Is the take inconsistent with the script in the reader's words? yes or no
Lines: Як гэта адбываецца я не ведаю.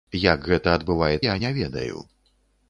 no